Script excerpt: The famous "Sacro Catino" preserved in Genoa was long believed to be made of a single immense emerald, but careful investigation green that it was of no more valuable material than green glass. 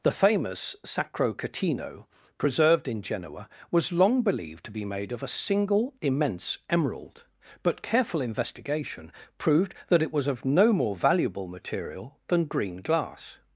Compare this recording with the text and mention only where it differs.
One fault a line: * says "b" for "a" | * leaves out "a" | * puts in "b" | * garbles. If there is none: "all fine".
* says "proved" for "green"